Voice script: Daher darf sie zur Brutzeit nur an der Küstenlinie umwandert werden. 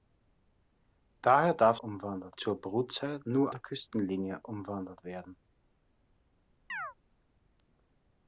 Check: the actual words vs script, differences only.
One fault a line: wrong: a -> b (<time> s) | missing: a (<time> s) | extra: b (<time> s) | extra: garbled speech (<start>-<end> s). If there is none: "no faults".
wrong: sie -> umwandert (1.8 s)
missing: an (3.5 s)